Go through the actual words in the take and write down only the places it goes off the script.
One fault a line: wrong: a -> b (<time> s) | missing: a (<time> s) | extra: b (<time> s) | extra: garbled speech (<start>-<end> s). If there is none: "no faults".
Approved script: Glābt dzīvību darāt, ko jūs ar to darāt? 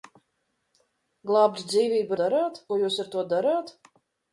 no faults